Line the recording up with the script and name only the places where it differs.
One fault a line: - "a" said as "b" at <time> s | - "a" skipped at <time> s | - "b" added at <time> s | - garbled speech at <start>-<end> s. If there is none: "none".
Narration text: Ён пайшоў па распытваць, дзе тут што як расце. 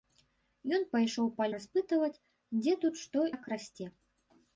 none